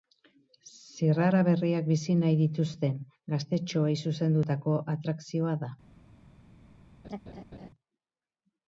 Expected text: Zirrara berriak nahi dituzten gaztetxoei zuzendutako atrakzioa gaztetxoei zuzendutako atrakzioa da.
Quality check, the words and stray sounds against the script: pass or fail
fail